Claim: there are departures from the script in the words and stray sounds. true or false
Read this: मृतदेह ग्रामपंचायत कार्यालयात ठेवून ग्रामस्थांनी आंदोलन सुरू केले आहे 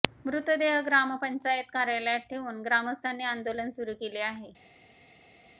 false